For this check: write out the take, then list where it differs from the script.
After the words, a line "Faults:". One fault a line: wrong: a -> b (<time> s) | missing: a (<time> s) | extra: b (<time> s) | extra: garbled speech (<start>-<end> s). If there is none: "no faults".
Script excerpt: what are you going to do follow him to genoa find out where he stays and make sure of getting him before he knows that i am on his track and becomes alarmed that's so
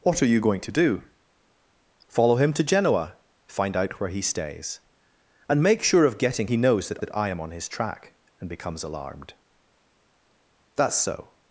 what are you going to do follow him to genoa find out where he stays and make sure of getting he knows that that i am on his track and becomes alarmed that's so
Faults:
missing: him before (6.5 s)
extra: that (7.0 s)